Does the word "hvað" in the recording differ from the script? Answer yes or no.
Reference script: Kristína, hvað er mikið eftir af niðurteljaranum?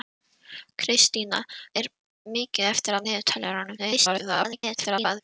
yes